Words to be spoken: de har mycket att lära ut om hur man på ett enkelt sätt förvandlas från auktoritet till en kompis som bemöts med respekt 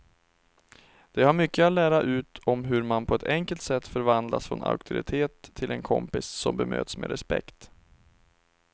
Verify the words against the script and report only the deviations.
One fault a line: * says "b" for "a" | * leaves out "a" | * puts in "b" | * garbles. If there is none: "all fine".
all fine